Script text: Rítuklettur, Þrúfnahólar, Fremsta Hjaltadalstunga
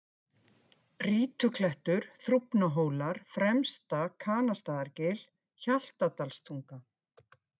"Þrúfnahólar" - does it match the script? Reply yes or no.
yes